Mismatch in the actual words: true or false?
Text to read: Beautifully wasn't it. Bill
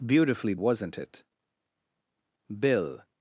false